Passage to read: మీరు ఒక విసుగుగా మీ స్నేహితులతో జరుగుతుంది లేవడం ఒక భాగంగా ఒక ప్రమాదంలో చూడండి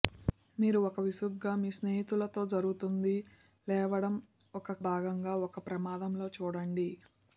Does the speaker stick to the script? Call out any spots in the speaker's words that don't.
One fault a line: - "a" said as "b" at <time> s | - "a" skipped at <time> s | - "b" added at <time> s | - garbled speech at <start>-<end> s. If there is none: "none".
none